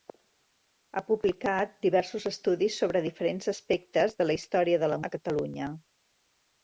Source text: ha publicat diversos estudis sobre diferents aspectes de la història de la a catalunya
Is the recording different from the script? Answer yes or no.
no